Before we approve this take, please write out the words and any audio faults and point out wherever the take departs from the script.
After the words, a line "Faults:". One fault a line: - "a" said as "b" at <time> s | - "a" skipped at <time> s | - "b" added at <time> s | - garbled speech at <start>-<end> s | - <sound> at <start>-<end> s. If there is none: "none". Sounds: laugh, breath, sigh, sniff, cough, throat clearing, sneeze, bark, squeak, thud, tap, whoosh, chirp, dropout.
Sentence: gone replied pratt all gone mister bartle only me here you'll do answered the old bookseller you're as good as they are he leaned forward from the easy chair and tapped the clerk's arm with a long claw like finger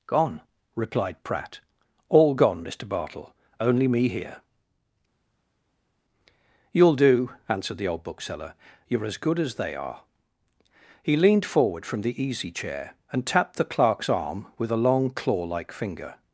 gone replied pratt all gone mister bartle only me here you'll do answered the old bookseller you're as good as they are he leaned forward from the easy chair and tapped the clerk's arm with a long claw like finger
Faults:
none